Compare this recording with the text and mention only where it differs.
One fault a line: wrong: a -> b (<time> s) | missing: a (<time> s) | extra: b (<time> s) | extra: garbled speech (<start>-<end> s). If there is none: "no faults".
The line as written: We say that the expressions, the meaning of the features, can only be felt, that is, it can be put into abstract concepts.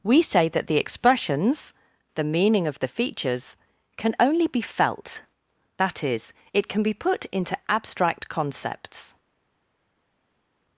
no faults